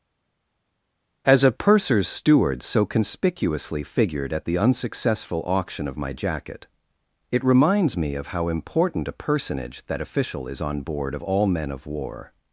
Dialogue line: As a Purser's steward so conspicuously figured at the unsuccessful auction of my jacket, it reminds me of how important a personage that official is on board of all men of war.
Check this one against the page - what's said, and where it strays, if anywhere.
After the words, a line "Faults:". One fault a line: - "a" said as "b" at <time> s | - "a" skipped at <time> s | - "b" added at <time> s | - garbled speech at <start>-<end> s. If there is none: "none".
As a Purser's steward so conspicuously figured at the unsuccessful auction of my jacket, it reminds me of how important a personage that official is on board of all men of war.
Faults:
none